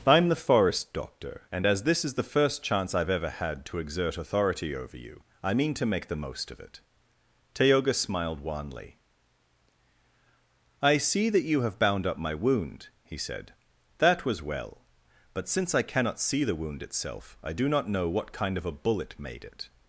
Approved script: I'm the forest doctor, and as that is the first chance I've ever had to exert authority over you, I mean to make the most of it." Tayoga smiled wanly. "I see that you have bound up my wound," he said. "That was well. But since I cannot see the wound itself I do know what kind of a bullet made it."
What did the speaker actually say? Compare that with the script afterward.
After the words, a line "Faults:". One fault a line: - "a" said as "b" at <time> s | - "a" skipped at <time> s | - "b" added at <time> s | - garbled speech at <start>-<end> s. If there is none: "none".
I'm the forest doctor, and as this is the first chance I've ever had to exert authority over you, I mean to make the most of it." Tayoga smiled wanly. "I see that you have bound up my wound," he said. "That was well. But since I cannot see the wound itself I do not know what kind of a bullet made it."
Faults:
- "that" said as "this" at 1.8 s
- "not" added at 17.7 s